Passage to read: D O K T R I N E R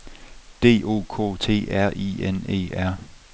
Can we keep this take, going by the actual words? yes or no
yes